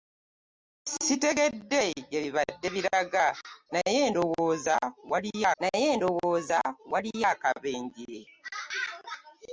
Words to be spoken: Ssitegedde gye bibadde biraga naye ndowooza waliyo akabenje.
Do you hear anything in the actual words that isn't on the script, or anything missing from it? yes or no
yes